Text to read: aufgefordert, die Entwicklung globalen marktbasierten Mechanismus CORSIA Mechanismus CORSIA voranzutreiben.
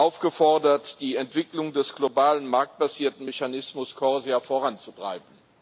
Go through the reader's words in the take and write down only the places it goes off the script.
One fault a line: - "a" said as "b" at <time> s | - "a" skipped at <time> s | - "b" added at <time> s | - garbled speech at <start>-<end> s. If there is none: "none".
- "des" added at 1.7 s
- "Mechanismus CORSIA" skipped at 4.4 s